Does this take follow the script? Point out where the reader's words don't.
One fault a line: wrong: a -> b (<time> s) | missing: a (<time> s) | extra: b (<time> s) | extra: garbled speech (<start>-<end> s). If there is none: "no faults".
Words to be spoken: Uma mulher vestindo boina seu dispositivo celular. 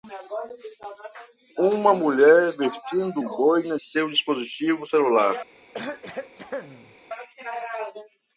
no faults